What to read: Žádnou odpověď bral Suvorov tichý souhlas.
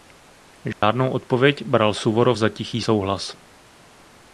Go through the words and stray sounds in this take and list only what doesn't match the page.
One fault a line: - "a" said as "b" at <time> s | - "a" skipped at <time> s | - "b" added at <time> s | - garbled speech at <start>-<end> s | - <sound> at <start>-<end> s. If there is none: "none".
- dropout at 0.7-0.8 s
- "za" added at 2.4 s